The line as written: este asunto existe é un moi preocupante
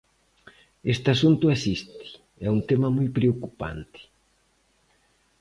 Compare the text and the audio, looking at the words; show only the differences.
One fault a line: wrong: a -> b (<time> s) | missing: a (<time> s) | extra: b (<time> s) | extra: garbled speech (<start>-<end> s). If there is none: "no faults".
extra: tema (2.7 s)